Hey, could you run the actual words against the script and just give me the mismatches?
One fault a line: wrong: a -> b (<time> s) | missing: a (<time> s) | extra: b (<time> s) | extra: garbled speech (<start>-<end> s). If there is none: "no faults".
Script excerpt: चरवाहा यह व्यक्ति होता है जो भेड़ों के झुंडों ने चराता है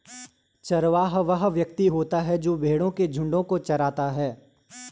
wrong: यह -> वह (1.2 s)
wrong: ने -> को (3.4 s)